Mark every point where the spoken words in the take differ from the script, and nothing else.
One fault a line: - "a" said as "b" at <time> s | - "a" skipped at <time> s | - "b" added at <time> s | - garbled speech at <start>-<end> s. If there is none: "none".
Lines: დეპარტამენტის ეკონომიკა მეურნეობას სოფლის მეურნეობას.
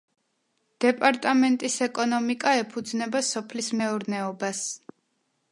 - "მეურნეობას" said as "ეფუძნება" at 2.6 s